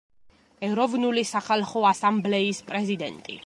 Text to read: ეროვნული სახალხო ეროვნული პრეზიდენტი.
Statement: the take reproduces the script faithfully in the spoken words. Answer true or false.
false